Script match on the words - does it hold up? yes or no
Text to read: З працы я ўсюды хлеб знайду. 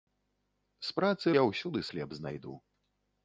yes